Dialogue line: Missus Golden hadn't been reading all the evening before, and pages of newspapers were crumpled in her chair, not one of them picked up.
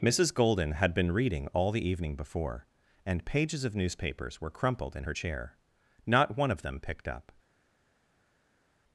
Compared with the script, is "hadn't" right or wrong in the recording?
wrong